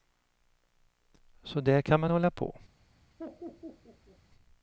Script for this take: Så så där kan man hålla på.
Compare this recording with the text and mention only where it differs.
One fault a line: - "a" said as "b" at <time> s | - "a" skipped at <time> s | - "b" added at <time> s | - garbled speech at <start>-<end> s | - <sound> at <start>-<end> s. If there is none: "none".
- "så" skipped at 1.6 s
- laugh at 3.2-4.2 s